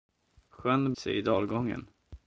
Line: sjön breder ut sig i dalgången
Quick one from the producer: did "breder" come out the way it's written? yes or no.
no